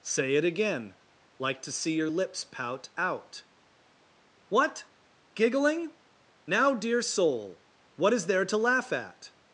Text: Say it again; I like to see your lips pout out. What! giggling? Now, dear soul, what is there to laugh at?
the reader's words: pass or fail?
fail